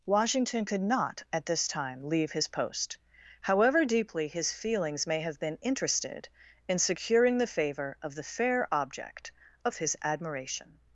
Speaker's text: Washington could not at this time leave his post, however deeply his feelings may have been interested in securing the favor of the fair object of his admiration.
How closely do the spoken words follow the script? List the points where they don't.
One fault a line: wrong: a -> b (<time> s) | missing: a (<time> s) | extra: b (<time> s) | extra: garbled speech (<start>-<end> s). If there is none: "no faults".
no faults